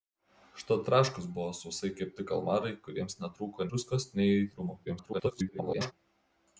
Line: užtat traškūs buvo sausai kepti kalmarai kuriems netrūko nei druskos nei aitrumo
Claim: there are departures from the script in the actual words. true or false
true